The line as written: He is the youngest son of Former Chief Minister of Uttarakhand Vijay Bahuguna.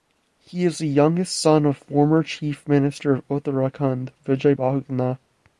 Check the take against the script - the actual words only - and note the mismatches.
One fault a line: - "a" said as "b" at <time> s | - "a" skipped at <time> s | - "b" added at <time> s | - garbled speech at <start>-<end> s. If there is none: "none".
none